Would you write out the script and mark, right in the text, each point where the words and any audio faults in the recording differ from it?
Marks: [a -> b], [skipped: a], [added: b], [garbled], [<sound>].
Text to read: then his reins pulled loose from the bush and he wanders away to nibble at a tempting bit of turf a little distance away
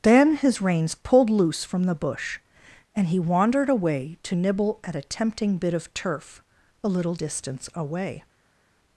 then his reins pulled loose from the bush and he [wanders -> wandered] away to nibble at a tempting bit of turf a little distance away